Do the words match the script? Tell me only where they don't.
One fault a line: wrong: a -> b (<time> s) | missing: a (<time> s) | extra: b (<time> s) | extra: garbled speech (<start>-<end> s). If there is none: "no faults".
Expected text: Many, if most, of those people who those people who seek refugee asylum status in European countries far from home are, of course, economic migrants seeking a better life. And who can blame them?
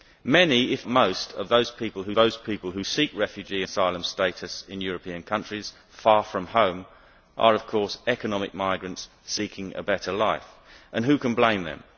no faults